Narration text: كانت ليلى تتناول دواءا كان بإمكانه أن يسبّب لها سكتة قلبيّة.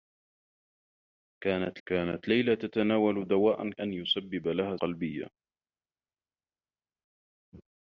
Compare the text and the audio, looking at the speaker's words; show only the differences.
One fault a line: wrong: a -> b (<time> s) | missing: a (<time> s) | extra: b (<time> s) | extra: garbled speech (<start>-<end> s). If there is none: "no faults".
extra: كانت (1.9 s)
missing: كان بإمكانه (3.7 s)
missing: سكتة (4.8 s)